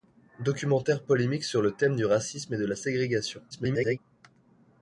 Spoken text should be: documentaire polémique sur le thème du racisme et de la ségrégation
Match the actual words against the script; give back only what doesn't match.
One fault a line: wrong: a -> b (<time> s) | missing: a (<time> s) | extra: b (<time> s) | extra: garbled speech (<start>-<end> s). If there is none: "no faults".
extra: garbled speech (3.5-4.0 s)